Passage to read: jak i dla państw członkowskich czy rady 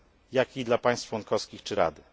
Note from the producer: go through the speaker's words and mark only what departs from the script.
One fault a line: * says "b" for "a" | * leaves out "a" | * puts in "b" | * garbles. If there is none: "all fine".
all fine